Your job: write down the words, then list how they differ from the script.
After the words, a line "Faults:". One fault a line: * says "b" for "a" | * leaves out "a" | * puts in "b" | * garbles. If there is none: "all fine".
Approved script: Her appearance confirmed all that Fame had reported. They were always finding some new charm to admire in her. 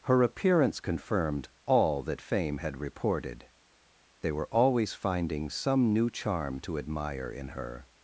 Her appearance confirmed all that Fame had reported. They were always finding some new charm to admire in her.
Faults:
all fine